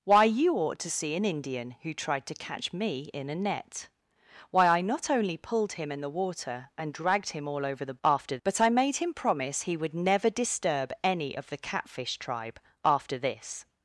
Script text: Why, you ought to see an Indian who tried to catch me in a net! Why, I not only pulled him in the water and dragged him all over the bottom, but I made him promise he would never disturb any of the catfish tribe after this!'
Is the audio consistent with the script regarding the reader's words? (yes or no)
no